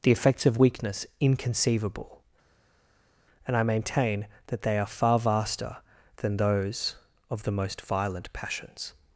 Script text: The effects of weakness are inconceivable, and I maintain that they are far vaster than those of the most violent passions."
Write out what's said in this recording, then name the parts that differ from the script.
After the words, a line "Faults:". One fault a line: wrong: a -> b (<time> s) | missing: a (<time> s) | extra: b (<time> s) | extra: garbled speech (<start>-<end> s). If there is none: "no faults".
The effects of weakness inconceivable, and I maintain that they are far vaster than those of the most violent passions."
Faults:
missing: are (1.1 s)